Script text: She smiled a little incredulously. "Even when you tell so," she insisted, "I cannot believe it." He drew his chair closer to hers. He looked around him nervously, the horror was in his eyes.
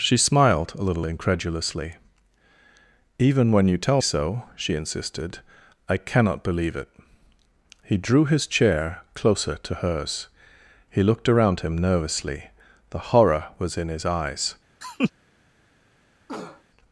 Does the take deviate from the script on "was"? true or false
false